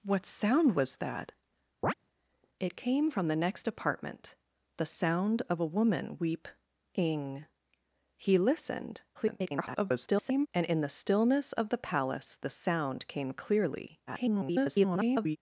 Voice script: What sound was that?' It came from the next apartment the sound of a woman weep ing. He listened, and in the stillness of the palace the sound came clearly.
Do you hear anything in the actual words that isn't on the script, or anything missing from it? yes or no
yes